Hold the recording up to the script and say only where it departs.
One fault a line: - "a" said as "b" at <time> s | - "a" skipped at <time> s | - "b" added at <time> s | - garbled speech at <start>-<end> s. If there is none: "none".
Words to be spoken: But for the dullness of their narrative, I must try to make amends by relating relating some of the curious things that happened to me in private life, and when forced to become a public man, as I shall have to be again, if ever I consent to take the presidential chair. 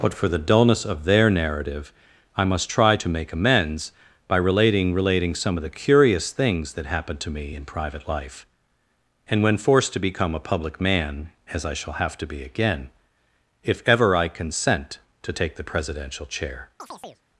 none